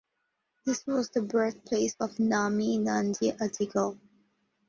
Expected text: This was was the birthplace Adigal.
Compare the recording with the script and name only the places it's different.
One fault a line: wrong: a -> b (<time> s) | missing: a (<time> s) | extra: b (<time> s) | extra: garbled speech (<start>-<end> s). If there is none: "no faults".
missing: was (1.1 s)
extra: of Nami Nandi (2.0 s)